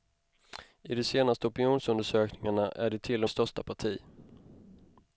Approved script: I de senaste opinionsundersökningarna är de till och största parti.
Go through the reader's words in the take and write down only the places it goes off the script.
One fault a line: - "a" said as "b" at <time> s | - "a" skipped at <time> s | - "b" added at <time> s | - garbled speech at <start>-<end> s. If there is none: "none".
none